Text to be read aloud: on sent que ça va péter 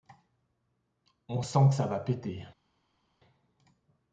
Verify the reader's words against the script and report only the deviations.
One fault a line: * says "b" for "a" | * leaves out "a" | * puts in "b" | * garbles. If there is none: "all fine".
all fine